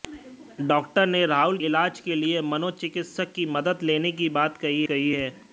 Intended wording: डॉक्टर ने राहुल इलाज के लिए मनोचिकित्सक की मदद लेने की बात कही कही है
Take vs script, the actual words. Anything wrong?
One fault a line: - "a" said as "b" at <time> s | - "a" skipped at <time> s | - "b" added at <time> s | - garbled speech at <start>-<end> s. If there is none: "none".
none